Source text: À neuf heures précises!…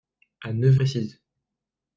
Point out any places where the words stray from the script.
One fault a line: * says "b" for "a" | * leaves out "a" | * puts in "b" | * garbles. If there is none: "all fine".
* leaves out "heures"